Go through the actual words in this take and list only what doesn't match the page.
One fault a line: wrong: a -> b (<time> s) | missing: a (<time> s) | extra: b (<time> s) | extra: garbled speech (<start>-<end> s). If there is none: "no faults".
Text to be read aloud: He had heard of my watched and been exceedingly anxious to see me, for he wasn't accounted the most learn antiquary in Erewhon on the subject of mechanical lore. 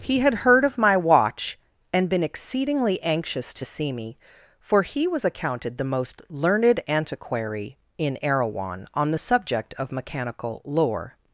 wrong: watched -> watch (1.0 s)
wrong: wasn't -> was (5.1 s)
wrong: learn -> learned (6.3 s)